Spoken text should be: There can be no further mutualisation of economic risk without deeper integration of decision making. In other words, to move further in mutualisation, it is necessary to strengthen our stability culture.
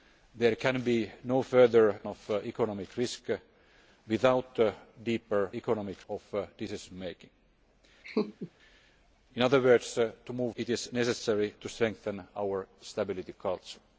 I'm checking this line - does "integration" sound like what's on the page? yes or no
no